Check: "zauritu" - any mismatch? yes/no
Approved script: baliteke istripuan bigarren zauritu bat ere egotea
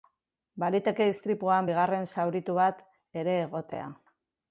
no